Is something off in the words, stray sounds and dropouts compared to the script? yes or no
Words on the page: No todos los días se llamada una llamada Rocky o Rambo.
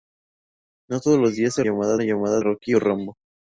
no